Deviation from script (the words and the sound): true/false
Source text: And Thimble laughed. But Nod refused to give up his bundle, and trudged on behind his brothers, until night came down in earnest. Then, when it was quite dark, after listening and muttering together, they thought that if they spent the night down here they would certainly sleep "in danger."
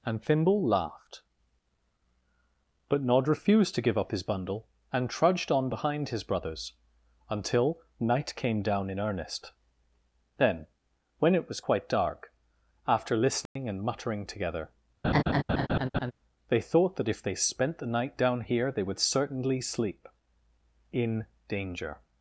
true